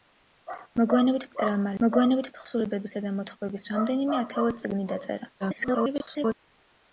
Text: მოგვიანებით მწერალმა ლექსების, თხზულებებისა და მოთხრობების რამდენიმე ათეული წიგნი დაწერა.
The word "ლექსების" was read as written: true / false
false